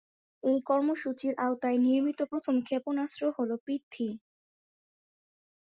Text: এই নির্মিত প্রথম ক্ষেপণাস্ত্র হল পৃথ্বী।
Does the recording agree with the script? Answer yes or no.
no